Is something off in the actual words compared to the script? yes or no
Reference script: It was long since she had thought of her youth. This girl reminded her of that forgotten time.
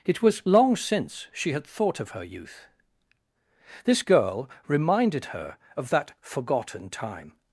no